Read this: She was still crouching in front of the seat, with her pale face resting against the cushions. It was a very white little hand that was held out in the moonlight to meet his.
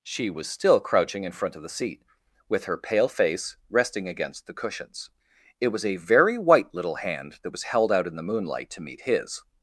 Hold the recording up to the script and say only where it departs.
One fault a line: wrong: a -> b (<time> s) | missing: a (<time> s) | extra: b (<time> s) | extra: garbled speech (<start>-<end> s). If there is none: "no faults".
no faults